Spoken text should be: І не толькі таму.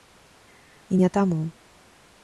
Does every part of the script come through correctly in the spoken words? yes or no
no